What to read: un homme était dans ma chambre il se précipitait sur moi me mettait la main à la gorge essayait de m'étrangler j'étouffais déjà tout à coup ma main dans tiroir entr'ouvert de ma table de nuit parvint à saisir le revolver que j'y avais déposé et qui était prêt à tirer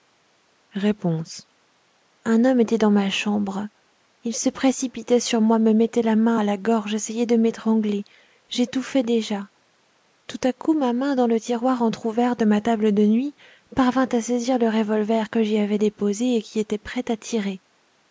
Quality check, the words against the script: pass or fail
fail